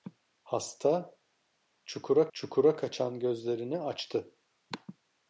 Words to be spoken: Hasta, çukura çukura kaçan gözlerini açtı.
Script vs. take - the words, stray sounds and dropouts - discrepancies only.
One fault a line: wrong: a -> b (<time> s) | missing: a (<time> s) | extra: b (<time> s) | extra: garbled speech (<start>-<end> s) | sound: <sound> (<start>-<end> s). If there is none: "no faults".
no faults